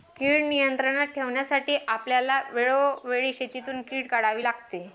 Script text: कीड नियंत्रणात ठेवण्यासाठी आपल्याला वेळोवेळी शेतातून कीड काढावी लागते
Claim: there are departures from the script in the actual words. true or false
false